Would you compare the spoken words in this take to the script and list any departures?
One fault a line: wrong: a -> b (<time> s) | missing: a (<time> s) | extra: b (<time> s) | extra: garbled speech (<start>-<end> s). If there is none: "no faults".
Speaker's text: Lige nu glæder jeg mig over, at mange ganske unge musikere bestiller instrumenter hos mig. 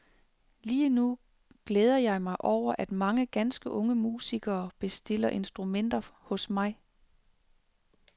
no faults